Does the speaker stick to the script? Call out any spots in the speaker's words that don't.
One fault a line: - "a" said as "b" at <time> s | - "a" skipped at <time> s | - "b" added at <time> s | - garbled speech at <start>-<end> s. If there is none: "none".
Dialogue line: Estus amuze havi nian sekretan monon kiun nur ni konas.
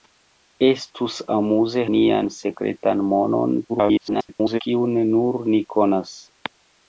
- "havi" skipped at 1.8 s
- garbled speech at 3.7-4.6 s